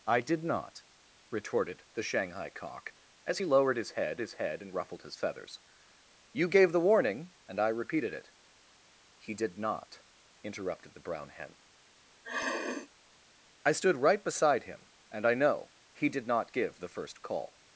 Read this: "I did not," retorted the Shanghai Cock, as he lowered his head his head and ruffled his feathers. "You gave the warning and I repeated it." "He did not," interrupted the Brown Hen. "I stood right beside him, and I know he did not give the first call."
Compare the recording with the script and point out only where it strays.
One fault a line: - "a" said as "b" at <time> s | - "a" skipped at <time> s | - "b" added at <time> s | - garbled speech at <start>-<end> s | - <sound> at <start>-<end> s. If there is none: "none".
- sniff at 12.2-12.9 s